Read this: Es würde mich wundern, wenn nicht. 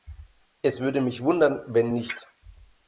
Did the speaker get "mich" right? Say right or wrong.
right